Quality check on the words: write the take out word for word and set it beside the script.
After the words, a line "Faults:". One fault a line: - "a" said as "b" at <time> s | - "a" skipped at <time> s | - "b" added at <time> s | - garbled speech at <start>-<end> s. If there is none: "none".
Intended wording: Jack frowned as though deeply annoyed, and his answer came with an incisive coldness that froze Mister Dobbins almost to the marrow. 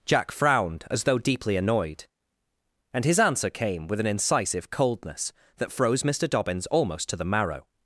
Jack frowned as though deeply annoyed, and his answer came with an incisive coldness that froze Mister Dobbins almost to the marrow.
Faults:
none